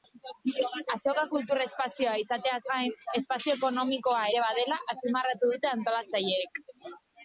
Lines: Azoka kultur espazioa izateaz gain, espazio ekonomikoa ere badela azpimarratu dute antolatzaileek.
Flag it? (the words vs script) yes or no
no